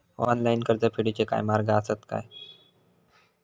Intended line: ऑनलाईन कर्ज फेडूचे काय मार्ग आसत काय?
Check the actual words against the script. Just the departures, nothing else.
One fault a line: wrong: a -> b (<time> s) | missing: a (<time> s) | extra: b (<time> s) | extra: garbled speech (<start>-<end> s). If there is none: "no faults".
no faults